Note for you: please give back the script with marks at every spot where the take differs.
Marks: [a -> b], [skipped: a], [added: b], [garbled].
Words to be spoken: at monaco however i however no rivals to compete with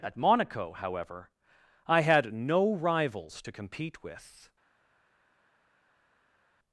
at monaco however i [however -> had] no rivals to compete with